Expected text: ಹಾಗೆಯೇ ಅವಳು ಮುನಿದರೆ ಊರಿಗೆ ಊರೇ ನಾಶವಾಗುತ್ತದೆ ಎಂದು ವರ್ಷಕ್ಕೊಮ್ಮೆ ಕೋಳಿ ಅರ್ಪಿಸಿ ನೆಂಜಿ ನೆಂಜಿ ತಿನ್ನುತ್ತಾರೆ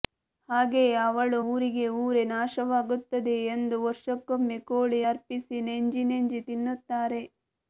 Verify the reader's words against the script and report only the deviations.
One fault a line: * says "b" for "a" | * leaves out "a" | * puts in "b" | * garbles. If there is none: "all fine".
* leaves out "ಮುನಿದರೆ"